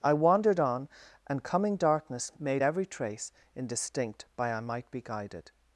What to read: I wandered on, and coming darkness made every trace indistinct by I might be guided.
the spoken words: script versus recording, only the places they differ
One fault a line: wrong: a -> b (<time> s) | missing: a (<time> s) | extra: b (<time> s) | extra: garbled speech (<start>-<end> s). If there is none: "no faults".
no faults